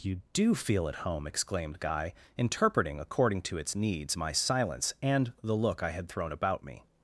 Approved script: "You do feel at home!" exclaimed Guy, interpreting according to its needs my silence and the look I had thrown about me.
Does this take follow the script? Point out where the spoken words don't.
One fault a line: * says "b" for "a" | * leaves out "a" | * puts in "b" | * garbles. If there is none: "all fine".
all fine